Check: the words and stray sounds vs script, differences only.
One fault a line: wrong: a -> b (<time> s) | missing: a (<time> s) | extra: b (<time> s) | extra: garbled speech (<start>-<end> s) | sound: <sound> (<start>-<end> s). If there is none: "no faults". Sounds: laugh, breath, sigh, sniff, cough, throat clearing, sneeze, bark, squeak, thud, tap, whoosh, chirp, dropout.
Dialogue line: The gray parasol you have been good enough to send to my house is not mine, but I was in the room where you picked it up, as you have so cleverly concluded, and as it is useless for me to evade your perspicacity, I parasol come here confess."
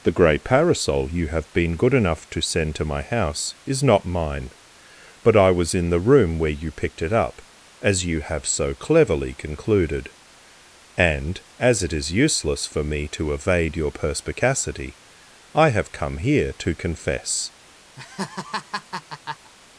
wrong: parasol -> have (15.7 s)
extra: to (16.6 s)
sound: laugh (18.0-19.5 s)